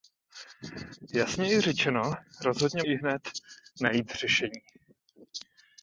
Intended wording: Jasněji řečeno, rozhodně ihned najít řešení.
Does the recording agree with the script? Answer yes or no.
yes